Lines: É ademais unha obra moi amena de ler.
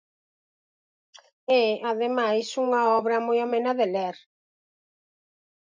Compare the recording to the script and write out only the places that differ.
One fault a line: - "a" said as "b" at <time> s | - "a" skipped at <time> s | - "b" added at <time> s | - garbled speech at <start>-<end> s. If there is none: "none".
none